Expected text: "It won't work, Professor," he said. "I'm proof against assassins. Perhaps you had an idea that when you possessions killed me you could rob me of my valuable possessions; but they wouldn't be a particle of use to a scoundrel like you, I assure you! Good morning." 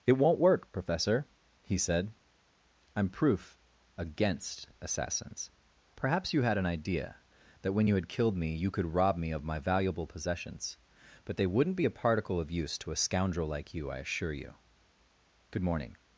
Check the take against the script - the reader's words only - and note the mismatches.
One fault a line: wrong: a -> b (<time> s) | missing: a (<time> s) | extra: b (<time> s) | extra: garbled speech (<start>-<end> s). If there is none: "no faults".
wrong: possessions -> had (7.9 s)